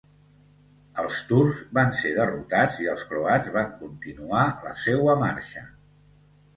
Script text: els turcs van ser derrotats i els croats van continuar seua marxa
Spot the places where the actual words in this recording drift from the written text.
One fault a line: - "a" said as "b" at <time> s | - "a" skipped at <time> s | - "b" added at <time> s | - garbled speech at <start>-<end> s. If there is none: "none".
- "la" added at 4.7 s